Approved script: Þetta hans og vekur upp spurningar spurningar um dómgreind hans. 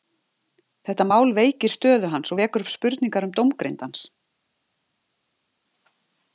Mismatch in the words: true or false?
true